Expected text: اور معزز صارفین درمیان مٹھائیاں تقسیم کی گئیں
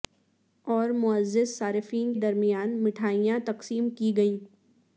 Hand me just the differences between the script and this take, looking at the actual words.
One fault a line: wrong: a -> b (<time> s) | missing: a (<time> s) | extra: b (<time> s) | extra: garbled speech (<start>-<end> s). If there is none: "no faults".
no faults